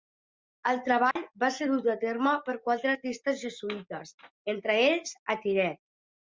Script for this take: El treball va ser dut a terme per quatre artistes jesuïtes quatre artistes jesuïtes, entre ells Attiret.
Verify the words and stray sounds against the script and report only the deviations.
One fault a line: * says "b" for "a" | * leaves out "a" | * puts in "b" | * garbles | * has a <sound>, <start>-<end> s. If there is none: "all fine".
* has a dropout, 1.1-1.2 s
* leaves out "quatre artistes jesuïtes"